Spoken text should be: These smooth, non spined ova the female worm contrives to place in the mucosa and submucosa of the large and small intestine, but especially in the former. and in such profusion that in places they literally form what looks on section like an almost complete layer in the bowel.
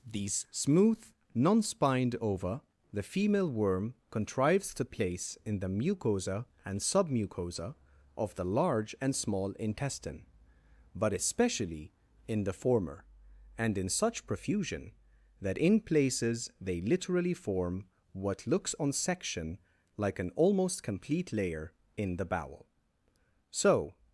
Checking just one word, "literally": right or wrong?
right